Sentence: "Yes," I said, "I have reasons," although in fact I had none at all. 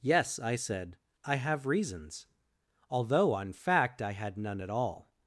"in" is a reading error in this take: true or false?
true